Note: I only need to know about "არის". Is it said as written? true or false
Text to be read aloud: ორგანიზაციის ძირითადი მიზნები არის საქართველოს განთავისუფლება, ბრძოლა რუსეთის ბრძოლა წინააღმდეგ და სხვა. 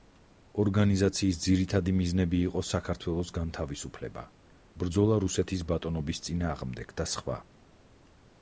false